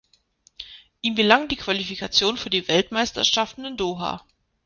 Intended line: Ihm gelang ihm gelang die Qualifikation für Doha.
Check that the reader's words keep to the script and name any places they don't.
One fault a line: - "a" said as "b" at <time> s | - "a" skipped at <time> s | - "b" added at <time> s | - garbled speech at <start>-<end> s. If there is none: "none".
- "ihm gelang" said as "die Qualifikation für" at 1.5 s
- "Qualifikation für" said as "Weltmeisterschaften in" at 2.7 s